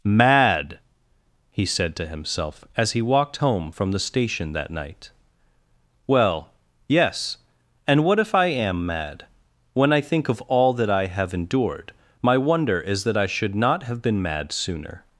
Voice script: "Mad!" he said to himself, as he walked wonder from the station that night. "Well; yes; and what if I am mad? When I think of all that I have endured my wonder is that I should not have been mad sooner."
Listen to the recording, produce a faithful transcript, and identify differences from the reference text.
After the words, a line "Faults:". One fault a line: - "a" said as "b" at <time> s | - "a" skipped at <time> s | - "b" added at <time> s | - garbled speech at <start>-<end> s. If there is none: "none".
"Mad!" he said to himself, as he walked home from the station that night. "Well; yes; and what if I am mad? When I think of all that I have endured my wonder is that I should not have been mad sooner."
Faults:
- "wonder" said as "home" at 3.4 s